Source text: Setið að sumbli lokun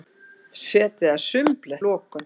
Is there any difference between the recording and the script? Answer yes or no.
no